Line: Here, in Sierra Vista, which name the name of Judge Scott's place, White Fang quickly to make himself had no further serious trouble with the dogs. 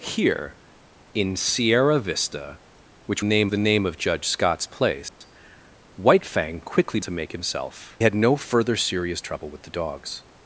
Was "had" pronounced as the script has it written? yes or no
yes